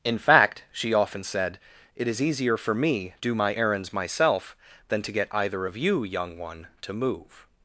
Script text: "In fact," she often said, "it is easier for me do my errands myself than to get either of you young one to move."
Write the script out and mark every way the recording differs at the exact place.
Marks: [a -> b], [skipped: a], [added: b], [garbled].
"In fact," she often said, "it is easier for me do my errands myself than to get either of you young one to move."